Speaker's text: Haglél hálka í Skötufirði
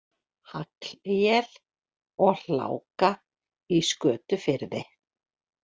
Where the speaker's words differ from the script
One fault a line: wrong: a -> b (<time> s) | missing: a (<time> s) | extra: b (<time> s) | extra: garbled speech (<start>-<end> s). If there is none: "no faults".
extra: og (2.3 s)